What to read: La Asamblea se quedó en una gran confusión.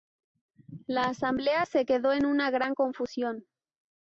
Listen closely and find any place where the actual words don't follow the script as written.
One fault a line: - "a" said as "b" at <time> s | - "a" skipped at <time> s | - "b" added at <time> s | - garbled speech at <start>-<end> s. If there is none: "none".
none